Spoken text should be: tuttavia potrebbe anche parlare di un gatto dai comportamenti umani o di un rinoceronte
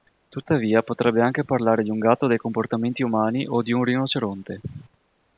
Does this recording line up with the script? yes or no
yes